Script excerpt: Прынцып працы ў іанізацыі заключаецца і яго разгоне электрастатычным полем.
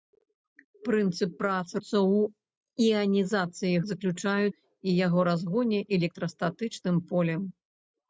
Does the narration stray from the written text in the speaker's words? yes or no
no